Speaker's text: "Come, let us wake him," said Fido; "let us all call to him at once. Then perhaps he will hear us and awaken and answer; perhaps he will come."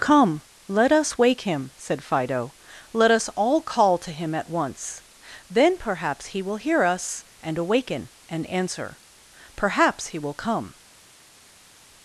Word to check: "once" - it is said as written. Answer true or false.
true